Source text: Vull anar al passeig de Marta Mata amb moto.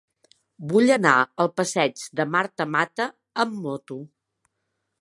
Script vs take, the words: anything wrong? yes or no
no